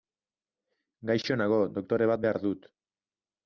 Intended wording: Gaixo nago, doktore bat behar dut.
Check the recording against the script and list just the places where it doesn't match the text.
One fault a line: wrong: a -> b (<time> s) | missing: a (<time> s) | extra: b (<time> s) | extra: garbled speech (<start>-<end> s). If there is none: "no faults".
no faults